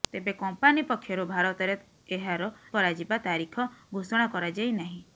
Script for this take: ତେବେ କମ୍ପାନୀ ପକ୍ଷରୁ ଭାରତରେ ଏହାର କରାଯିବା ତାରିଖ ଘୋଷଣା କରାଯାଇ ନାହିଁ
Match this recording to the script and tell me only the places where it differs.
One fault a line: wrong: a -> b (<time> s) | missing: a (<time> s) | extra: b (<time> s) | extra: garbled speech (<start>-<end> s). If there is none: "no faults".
no faults